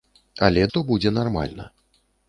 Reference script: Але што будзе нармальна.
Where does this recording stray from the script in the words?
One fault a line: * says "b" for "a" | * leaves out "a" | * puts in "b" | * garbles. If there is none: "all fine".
all fine